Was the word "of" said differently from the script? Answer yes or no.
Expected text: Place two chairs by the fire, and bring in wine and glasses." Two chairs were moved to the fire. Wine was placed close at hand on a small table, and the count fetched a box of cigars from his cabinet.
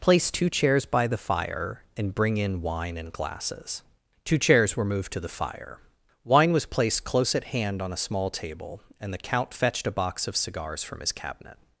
no